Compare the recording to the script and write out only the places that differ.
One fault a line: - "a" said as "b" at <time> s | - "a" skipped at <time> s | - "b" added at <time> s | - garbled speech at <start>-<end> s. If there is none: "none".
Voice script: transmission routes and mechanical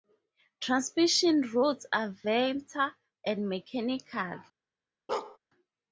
- "are vector" added at 1.9 s